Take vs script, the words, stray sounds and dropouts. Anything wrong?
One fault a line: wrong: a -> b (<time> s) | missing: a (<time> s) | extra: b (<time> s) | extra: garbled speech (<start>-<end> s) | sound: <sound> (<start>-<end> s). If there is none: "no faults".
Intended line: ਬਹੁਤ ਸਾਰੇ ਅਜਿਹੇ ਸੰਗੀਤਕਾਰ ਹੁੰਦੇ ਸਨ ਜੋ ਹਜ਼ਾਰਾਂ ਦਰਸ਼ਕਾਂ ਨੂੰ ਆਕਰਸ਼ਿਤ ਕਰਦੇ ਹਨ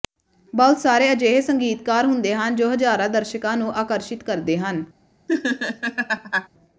wrong: ਸਨ -> ਹਨ (2.4 s)
sound: laugh (5.3-6.5 s)